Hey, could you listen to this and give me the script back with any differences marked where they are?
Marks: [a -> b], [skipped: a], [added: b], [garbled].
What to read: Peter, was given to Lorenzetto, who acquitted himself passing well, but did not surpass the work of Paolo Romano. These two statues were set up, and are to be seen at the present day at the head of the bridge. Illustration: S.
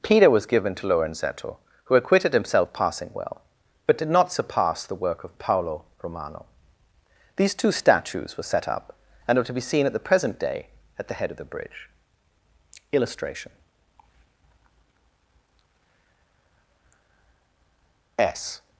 Peter, was given to Lorenzetto, who acquitted himself passing well, but did not surpass the work of Paolo Romano. These two statues were set up, and are to be seen at the present day at the head of the bridge. Illustration: S.